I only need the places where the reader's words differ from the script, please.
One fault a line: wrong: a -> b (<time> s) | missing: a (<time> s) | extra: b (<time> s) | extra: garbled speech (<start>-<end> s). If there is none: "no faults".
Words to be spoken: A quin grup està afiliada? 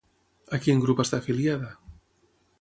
no faults